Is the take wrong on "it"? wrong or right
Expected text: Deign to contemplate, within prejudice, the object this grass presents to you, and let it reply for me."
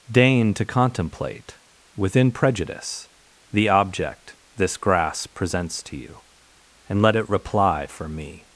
right